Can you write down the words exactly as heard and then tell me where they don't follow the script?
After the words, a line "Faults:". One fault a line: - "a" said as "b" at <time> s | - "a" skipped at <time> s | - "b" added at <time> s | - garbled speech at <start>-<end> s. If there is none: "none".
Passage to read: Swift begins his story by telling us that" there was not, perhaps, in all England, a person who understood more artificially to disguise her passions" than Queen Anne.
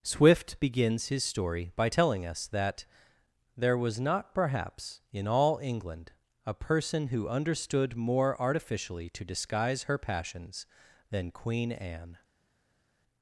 Swift begins his story by telling us that" there was not, perhaps, in all England, a person who understood more artificially to disguise her passions" than Queen Anne.
Faults:
none